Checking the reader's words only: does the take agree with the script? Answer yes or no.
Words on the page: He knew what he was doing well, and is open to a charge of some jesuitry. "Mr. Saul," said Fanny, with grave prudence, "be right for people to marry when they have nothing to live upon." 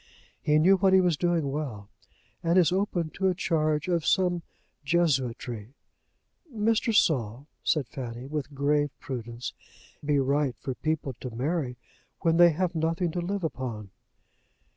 yes